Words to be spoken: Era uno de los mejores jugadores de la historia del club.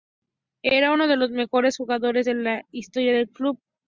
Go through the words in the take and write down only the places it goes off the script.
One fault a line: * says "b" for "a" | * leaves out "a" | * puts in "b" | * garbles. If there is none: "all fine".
all fine